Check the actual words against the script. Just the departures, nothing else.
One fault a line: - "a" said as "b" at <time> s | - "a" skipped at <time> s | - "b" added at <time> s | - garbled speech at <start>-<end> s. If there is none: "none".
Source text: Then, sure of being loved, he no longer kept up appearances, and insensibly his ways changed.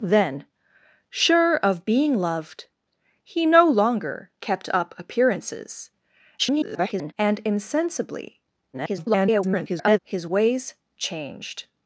- garbled speech at 6.4-7.1 s
- garbled speech at 8.7-10.0 s